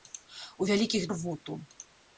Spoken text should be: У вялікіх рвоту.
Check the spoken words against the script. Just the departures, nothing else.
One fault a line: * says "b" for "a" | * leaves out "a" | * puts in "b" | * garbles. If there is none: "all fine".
all fine